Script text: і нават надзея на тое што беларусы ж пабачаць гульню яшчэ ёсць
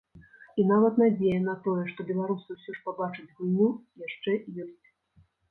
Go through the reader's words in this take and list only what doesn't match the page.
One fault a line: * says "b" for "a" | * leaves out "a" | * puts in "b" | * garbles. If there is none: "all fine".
* puts in "ўсё"